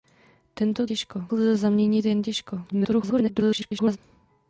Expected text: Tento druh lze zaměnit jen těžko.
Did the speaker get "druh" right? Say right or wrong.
wrong